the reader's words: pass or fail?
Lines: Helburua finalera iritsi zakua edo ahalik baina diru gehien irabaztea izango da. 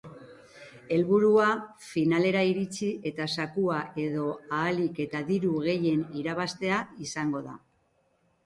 fail